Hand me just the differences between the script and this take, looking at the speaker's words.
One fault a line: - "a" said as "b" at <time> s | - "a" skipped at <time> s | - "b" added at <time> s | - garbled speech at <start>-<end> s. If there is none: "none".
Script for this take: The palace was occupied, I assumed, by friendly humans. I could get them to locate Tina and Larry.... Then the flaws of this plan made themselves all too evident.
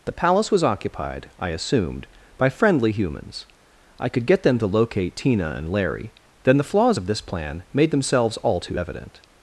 none